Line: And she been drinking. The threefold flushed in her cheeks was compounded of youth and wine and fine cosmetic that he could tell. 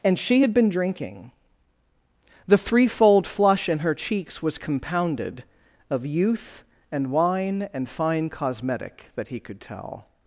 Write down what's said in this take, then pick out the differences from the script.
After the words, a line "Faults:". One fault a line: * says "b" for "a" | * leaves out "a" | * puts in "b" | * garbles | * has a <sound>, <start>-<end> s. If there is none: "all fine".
And she had been drinking. The threefold flush in her cheeks was compounded of youth and wine and fine cosmetic that he could tell.
Faults:
* puts in "had"
* says "flush" for "flushed"